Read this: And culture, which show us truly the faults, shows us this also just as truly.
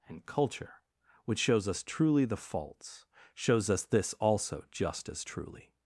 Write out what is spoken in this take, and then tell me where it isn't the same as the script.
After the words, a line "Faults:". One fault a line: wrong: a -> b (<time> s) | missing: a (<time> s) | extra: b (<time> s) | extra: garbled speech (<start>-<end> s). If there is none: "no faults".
And culture, which shows us truly the faults, shows us this also just as truly.
Faults:
wrong: show -> shows (1.4 s)